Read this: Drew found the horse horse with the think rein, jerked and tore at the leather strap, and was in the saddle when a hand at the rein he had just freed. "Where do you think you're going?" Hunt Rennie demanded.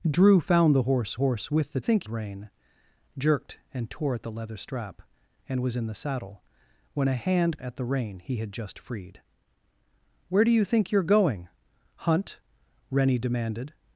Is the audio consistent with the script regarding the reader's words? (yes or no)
yes